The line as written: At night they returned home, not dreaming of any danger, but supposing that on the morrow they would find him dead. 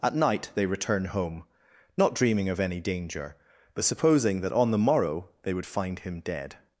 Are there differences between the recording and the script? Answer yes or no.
yes